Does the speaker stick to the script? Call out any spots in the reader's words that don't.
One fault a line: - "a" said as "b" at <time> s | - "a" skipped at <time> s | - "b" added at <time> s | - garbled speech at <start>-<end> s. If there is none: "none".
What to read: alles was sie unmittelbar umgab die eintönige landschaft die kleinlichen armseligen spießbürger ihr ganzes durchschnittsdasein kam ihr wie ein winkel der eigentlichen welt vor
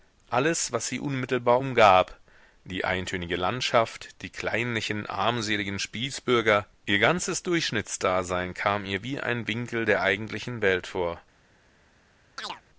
none